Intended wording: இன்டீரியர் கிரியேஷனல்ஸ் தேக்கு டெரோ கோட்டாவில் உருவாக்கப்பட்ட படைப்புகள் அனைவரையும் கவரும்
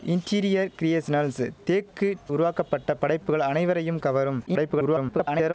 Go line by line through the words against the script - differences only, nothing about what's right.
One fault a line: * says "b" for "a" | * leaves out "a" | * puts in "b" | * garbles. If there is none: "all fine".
* leaves out "டெரோ கோட்டாவில்"
* garbles